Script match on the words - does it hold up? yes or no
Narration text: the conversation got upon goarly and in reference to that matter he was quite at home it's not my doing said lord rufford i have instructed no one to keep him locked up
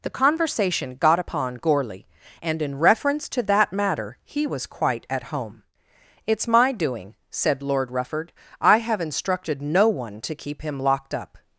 no